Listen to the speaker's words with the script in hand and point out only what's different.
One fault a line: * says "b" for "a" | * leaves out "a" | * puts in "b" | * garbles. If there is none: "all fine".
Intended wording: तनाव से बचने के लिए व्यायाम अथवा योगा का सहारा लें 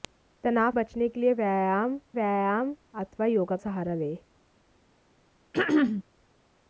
* leaves out "से"
* puts in "व्यायाम"
* leaves out "का"